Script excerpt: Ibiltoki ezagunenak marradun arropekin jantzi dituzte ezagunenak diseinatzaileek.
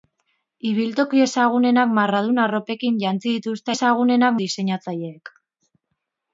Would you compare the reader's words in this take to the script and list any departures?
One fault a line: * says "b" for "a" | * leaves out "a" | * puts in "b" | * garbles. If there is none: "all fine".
all fine